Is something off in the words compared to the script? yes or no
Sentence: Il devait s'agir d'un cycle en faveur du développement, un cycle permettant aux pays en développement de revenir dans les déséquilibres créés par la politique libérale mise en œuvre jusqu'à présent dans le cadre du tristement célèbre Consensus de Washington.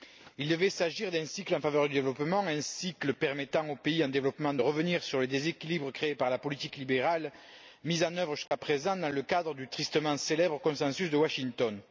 yes